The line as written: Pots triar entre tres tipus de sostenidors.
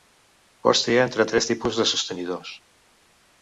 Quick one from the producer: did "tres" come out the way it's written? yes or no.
yes